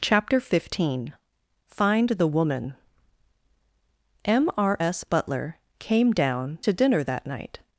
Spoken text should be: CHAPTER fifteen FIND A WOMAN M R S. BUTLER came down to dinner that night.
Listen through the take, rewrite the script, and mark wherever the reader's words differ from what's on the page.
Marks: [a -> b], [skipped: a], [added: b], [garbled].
CHAPTER fifteen FIND [A -> THE] WOMAN M R S. BUTLER came down to dinner that night.